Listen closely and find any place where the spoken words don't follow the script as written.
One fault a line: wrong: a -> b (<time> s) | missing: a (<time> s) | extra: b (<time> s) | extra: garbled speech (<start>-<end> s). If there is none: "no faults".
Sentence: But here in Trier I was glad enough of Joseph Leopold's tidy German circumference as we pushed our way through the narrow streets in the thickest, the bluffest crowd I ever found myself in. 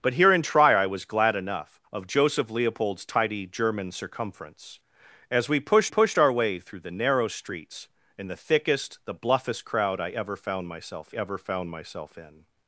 extra: pushed (5.8 s)
extra: ever found myself (11.1 s)